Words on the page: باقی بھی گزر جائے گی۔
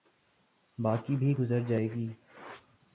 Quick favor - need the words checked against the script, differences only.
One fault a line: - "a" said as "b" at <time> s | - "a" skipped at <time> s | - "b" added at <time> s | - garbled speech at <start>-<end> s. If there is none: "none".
none